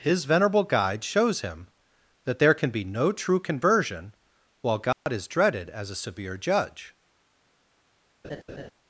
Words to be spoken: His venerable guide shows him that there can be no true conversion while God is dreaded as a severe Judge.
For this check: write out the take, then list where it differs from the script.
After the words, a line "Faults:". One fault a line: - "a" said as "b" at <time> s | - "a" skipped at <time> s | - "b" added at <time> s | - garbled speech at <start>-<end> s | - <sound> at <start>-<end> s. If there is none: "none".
His venerable guide shows him that there can be no true conversion while God is dreaded as a severe Judge.
Faults:
- dropout at 4.9-5.1 s
- laugh at 8.2-8.7 s